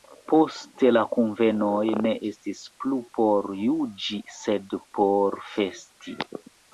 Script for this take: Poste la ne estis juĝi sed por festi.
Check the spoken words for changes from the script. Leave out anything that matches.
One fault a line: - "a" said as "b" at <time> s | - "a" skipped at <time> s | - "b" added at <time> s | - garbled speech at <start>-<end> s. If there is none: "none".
- "kunvenoj" added at 1.2 s
- "plu por" added at 2.8 s